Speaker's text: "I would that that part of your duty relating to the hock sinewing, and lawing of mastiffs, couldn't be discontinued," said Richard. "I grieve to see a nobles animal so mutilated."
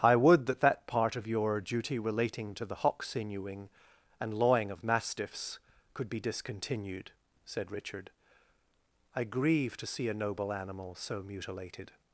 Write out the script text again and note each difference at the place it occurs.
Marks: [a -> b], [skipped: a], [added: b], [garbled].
"I would that that part of your duty relating to the hock sinewing, and lawing of mastiffs, [couldn't -> could] be discontinued," said Richard. "I grieve to see a [nobles -> noble] animal so mutilated."